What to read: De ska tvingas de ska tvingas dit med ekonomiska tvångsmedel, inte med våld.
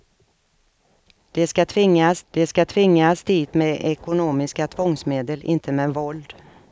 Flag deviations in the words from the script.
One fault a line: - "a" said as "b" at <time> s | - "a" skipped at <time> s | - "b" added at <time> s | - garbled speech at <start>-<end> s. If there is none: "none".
none